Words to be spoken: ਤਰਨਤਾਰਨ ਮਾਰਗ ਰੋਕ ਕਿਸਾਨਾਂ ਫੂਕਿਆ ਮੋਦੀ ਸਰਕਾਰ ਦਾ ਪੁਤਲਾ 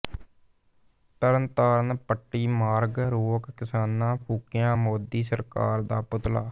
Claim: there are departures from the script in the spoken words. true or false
true